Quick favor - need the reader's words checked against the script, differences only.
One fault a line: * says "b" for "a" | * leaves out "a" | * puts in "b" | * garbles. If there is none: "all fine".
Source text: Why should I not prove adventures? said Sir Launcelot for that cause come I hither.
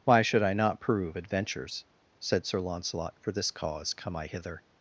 * says "this" for "that"